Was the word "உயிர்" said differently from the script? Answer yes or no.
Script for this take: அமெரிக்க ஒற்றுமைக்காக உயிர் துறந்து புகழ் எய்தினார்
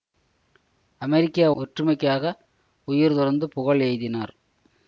no